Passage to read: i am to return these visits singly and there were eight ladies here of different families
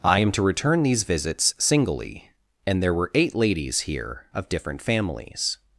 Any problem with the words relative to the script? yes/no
no